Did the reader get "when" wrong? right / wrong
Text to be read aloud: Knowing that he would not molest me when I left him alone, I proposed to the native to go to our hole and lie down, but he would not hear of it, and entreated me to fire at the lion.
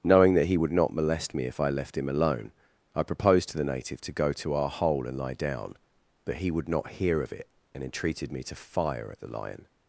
wrong